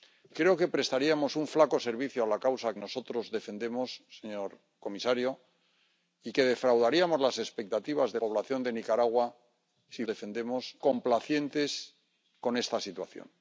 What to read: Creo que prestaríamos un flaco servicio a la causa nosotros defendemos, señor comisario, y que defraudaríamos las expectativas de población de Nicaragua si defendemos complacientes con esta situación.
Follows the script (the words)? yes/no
yes